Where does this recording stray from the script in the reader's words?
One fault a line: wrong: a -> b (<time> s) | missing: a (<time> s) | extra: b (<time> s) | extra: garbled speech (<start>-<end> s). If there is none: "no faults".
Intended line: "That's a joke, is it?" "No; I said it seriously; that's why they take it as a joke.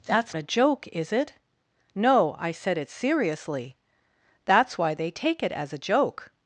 no faults